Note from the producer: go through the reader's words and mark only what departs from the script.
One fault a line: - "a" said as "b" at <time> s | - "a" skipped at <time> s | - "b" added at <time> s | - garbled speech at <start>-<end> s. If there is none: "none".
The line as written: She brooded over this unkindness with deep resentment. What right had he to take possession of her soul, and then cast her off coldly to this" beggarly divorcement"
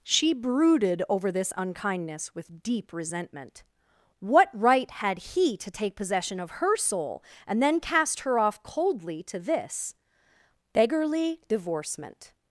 none